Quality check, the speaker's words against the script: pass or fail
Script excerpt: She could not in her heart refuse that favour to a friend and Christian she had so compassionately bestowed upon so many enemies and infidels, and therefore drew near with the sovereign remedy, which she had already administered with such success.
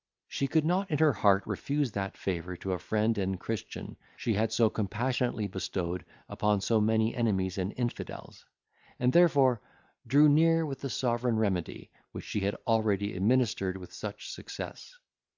pass